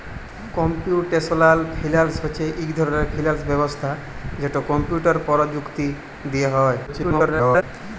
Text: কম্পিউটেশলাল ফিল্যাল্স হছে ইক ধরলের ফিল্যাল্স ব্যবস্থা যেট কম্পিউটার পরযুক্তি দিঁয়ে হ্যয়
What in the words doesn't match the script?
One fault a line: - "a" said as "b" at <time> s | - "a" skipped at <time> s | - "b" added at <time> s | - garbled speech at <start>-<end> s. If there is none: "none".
- garbled speech at 6.9-7.6 s